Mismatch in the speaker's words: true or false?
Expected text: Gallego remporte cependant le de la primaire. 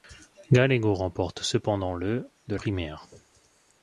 true